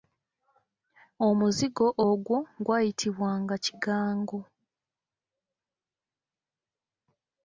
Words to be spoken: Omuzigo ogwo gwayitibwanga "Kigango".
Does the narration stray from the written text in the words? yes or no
no